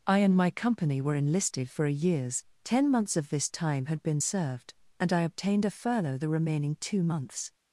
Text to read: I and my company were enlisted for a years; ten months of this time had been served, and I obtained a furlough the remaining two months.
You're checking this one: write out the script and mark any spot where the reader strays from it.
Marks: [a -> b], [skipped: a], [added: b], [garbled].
I and my company were enlisted for a years; ten months of this time had been served, and I obtained a furlough the remaining two months.